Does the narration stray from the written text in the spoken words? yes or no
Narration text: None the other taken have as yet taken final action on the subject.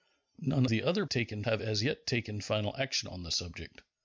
no